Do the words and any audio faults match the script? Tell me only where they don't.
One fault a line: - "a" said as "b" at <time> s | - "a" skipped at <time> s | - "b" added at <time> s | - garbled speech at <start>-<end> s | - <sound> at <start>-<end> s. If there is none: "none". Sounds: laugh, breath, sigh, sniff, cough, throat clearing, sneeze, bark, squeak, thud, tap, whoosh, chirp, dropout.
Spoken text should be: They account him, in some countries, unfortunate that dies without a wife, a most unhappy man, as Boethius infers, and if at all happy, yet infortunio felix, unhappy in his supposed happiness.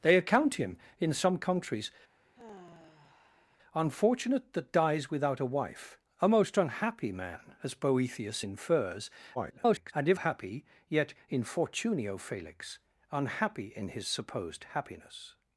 - sigh at 2.2-3.6 s
- garbled speech at 9.3-9.9 s
- "at all" skipped at 10.2 s